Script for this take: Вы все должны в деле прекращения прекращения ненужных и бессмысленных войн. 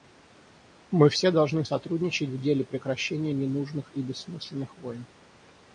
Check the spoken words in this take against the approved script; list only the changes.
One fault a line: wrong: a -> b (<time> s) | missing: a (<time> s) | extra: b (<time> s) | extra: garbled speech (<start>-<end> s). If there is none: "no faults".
wrong: Вы -> Мы (0.9 s)
extra: сотрудничать (1.6 s)
missing: прекращения (3.3 s)